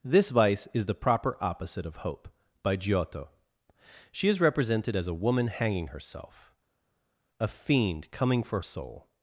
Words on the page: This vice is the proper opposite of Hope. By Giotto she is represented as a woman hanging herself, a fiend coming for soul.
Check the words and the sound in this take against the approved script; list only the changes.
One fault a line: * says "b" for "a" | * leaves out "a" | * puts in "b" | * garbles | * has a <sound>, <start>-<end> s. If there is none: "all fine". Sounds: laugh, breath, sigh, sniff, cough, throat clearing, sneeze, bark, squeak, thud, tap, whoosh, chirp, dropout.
all fine